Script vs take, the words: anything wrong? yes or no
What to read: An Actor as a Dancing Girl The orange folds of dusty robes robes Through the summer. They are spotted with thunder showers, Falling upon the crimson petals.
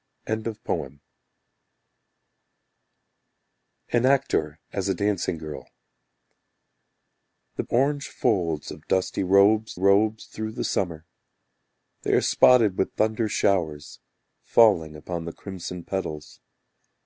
no